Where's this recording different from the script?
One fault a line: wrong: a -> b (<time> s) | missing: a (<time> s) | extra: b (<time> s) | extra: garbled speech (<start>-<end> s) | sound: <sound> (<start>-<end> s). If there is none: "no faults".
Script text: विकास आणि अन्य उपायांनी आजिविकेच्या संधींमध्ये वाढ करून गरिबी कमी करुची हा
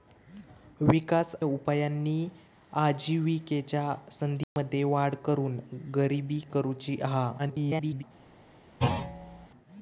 missing: आणि अन्य (1.3 s)
sound: dropout (4.4-4.6 s)
missing: कमी (6.4 s)
extra: garbled speech (7.4-8.0 s)
sound: thud (8.8-9.5 s)